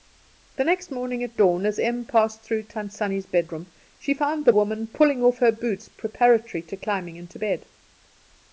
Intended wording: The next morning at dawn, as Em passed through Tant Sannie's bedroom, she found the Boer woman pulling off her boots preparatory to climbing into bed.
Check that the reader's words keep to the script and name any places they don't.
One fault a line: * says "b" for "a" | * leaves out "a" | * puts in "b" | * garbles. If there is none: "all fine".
* leaves out "Boer"